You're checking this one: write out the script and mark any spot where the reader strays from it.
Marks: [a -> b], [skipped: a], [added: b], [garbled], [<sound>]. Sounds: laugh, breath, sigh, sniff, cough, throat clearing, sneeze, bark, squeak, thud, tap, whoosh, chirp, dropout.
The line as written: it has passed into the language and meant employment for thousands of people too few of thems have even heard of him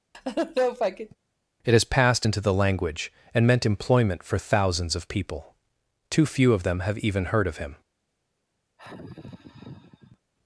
[laugh] it has passed into the language and meant employment for thousands of people too few of [thems -> them] have even heard of him [sigh]